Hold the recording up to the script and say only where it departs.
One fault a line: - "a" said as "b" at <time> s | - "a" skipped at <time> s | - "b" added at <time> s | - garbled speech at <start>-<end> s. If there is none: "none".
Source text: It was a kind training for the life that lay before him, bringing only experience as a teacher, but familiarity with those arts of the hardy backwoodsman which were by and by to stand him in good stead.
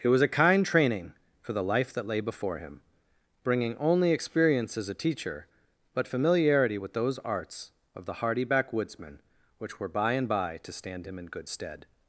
none